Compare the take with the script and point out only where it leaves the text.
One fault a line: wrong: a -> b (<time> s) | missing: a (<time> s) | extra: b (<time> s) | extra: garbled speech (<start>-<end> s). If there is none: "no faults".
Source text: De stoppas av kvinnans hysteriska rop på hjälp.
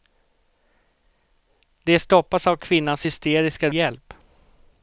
missing: rop på (3.7 s)